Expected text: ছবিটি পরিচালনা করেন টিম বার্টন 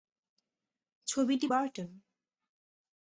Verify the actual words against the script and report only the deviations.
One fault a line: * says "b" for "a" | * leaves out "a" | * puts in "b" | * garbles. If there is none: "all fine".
* leaves out "পরিচালনা করেন টিম"